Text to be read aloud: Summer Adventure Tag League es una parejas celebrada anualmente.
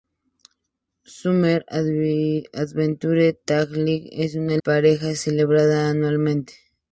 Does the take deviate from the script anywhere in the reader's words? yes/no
no